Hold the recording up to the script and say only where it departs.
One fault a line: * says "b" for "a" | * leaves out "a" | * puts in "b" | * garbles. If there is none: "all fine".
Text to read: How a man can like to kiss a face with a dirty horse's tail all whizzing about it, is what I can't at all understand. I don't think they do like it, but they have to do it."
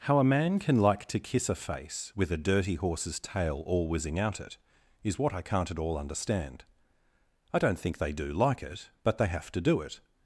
* says "out" for "about"